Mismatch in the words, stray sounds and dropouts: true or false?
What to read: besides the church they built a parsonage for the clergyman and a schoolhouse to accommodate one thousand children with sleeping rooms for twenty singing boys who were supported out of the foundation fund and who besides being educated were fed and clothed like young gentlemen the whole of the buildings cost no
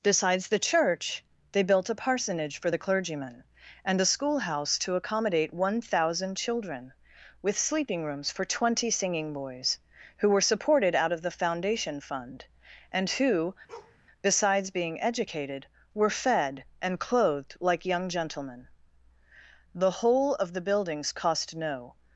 true